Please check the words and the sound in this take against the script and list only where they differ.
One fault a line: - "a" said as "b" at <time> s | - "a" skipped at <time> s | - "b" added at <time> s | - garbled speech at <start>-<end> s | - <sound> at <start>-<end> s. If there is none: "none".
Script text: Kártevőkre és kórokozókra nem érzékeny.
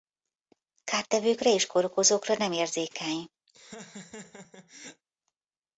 - laugh at 3.5-5.0 s